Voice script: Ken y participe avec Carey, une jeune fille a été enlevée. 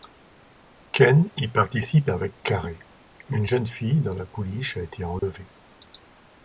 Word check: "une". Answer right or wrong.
right